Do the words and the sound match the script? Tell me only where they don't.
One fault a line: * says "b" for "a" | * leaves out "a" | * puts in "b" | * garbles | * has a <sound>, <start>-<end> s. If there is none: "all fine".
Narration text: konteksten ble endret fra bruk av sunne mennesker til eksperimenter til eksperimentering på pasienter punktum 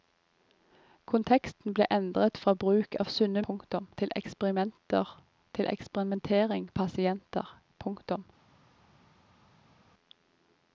* says "punktum" for "mennesker"
* leaves out "på"